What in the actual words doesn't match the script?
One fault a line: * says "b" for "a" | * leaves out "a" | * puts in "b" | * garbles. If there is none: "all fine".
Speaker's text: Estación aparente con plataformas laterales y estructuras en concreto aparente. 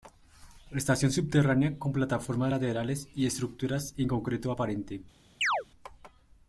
* says "subterránea" for "aparente"